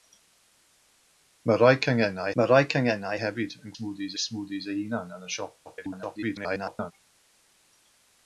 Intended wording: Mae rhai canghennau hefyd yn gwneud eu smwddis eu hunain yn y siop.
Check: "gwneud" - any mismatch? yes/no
yes